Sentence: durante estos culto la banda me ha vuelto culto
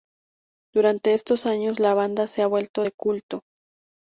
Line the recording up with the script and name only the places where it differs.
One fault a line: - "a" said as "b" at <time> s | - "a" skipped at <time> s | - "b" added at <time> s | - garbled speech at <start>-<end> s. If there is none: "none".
- "culto" said as "años" at 1.4 s
- "me" said as "se" at 2.3 s
- "de" added at 2.8 s